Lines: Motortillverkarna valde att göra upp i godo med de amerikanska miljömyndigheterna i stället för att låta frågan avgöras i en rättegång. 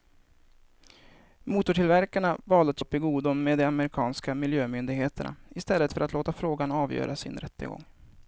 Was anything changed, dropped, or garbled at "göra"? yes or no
yes